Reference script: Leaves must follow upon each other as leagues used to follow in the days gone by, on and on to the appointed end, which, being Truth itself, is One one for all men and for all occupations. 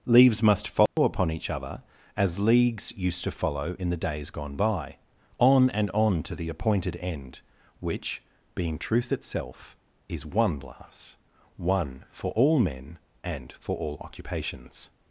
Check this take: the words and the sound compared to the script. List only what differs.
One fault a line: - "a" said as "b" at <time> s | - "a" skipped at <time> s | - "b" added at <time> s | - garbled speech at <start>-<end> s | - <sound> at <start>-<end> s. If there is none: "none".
- dropout at 0.9-1.0 s
- "glass" added at 10.6 s